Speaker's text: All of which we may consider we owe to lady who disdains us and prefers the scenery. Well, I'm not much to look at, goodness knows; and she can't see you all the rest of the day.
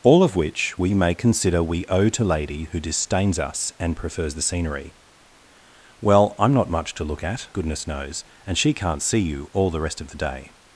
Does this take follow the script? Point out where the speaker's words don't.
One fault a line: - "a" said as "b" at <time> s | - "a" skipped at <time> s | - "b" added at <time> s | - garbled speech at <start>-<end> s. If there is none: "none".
none